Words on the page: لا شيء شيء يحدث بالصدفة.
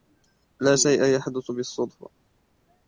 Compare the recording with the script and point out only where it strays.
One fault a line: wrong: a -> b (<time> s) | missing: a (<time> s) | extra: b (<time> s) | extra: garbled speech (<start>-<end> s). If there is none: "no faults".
missing: شيء (1.0 s)